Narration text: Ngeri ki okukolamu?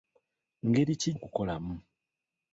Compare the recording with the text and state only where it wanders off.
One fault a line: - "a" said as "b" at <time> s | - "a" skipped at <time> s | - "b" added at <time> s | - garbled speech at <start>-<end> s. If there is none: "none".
none